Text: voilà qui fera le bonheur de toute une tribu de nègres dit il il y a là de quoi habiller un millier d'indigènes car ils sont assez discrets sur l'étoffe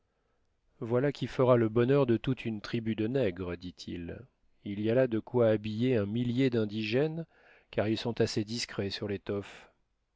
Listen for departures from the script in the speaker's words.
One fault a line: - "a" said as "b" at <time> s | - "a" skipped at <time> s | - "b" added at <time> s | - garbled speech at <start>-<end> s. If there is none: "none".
none